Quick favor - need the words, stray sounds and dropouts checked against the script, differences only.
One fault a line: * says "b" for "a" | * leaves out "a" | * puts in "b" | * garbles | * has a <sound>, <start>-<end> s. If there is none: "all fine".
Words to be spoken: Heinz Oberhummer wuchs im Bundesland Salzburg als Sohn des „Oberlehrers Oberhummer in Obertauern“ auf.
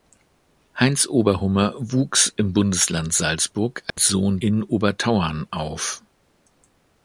* has a dropout, 3.9-4.0 s
* leaves out "des Oberlehrers Oberhummer"